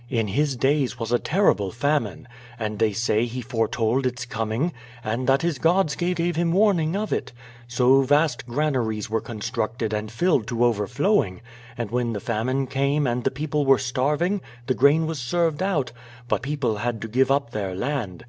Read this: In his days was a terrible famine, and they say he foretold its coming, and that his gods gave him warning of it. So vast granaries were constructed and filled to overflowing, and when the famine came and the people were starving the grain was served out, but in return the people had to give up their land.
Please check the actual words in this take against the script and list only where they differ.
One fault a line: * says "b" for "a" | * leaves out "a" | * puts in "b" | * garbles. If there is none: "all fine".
* puts in "gave"
* leaves out "in return the"